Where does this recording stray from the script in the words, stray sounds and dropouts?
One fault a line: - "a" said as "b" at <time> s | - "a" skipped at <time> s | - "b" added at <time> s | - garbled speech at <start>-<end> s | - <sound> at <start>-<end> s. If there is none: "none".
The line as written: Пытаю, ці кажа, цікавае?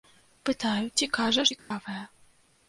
- dropout at 1.6-1.7 s